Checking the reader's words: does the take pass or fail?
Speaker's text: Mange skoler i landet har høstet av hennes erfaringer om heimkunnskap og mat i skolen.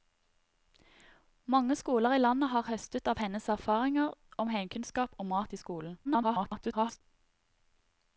fail